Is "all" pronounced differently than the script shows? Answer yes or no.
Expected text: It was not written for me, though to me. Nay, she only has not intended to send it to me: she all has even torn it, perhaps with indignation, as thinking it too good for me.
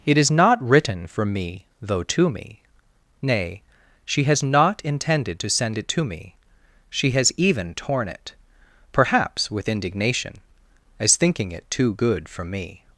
yes